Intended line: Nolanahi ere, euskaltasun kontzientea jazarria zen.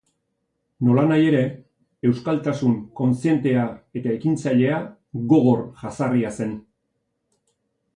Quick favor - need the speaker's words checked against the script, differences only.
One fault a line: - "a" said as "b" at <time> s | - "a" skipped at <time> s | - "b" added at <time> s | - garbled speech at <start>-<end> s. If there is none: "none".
- "eta ekintzailea gogor" added at 4.0 s